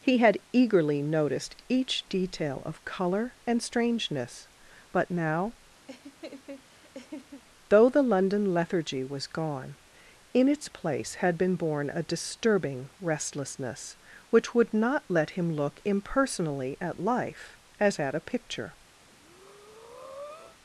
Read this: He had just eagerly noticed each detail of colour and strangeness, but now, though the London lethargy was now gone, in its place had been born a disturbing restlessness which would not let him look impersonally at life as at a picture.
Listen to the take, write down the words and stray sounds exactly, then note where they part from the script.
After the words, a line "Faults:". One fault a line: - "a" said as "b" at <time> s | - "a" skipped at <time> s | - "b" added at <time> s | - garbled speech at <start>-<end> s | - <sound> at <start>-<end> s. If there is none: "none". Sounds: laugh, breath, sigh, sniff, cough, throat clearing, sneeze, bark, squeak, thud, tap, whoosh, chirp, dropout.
He had eagerly noticed each detail of colour and strangeness, but now, though the London lethargy was gone, in its place had been born a disturbing restlessness which would not let him look impersonally at life as at a picture.
Faults:
- "just" skipped at 0.4 s
- laugh at 5.9-7.4 s
- "now" skipped at 9.3 s
- breath at 19.0-20.6 s